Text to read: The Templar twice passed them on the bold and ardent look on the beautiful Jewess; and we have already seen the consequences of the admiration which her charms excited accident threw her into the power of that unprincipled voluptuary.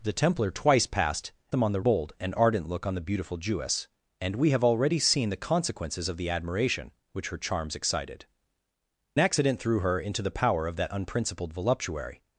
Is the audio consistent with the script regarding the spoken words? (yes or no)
yes